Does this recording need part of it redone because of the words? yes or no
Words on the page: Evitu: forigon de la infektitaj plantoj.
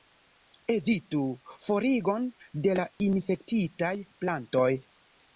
no